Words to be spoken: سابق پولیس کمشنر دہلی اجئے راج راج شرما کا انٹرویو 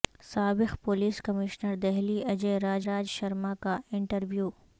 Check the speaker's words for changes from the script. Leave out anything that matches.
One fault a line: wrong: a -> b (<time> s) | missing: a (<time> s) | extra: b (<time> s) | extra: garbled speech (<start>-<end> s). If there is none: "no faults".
no faults